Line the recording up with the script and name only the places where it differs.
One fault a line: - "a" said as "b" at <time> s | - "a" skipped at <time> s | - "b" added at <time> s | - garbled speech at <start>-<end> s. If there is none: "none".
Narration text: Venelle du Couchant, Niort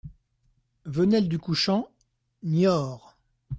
none